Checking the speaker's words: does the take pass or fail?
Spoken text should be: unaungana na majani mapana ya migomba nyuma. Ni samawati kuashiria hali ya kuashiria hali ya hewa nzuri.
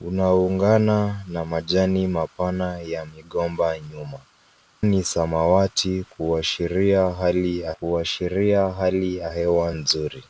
pass